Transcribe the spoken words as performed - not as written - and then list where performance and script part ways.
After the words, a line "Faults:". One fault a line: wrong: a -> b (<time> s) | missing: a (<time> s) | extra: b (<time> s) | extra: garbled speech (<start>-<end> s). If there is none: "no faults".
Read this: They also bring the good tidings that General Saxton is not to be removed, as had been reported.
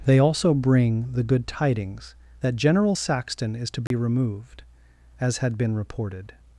They also bring the good tidings that General Saxton is to be removed, as had been reported.
Faults:
missing: not (3.7 s)